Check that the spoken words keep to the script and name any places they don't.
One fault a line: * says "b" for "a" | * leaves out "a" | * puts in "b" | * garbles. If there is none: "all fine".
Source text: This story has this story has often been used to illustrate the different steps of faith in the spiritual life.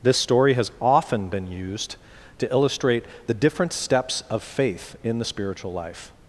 * leaves out "this story has"